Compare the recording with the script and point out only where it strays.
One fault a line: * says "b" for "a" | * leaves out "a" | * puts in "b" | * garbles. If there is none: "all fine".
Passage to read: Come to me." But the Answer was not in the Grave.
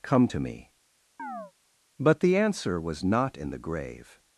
all fine